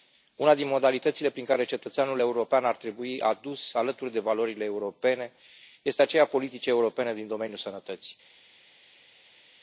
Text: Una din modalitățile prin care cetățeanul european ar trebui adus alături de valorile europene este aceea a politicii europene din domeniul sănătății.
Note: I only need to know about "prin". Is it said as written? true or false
true